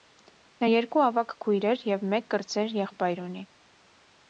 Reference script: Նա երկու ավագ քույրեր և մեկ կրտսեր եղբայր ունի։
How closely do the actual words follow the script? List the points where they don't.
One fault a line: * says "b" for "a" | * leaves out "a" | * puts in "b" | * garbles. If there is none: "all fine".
all fine